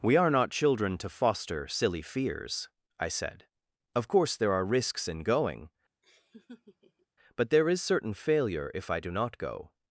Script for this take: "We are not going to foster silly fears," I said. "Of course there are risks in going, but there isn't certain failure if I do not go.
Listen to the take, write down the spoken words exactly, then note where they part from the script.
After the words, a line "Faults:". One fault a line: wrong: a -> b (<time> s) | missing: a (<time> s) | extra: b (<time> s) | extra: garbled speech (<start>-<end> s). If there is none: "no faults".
"We are not children to foster silly fears," I said. "Of course there are risks in going, but there is certain failure if I do not go.
Faults:
wrong: going -> children (0.5 s)
wrong: isn't -> is (7.7 s)